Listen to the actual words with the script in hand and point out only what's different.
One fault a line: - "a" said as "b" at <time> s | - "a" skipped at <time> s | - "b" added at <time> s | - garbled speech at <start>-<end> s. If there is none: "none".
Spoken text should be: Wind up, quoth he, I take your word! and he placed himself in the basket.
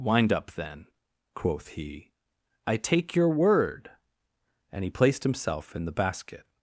- "then" added at 0.5 s